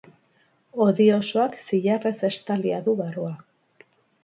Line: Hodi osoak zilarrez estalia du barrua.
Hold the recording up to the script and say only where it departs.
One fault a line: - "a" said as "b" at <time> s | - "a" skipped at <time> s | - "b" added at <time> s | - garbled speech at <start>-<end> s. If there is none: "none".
none